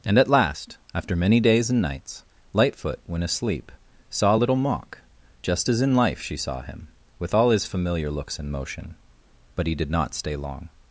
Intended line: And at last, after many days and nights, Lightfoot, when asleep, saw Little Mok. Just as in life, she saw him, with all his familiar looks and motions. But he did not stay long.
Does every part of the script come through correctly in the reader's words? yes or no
no